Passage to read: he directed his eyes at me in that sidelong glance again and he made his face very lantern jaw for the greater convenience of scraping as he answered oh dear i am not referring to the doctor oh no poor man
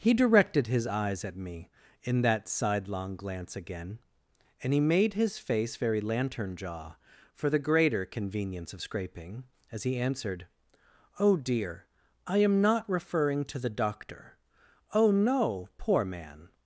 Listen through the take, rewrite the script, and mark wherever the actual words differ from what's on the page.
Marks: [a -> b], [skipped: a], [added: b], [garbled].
he directed his eyes at me in that sidelong glance again and he made his face very lantern jaw for the greater convenience of scraping as he answered oh dear i am not referring to the doctor oh no poor man